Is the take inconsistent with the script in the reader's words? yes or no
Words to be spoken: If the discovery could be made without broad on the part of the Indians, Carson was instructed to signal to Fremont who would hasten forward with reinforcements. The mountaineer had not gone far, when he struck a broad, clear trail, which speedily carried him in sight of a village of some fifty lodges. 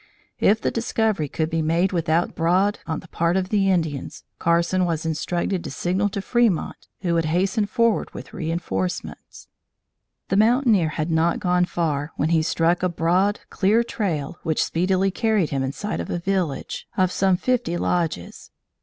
no